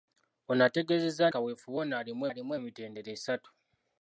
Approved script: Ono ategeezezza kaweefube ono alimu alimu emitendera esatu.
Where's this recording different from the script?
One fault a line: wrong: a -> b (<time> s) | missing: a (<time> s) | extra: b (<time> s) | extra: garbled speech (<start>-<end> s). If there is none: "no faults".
no faults